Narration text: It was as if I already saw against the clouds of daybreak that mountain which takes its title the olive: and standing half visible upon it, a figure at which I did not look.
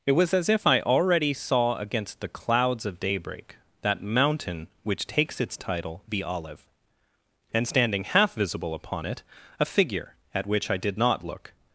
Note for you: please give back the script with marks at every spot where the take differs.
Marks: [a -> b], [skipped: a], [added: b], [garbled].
It was as if I already saw against the clouds of daybreak that mountain which takes its title the olive: and standing half visible upon it, a figure at which I did not look.